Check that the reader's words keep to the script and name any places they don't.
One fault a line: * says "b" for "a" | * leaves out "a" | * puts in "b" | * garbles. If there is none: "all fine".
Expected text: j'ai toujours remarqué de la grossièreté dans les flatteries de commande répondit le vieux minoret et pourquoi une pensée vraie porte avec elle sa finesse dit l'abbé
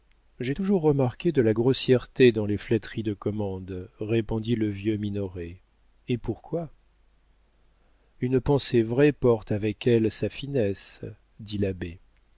all fine